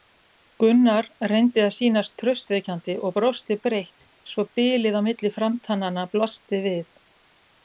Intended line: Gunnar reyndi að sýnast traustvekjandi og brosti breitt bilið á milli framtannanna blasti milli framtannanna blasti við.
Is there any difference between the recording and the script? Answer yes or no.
yes